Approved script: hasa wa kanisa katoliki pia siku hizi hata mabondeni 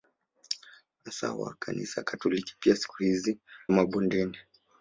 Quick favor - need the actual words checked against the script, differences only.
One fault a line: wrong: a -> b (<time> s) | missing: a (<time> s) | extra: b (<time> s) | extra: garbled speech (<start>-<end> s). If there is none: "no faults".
missing: hata (3.4 s)